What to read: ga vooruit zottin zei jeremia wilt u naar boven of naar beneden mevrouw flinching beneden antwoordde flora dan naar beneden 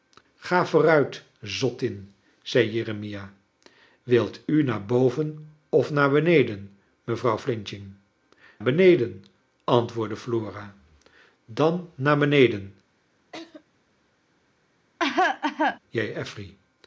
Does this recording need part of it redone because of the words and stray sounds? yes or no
yes